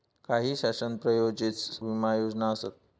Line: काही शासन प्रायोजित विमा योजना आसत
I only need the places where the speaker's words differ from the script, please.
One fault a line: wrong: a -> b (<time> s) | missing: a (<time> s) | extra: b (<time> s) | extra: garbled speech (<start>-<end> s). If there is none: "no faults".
no faults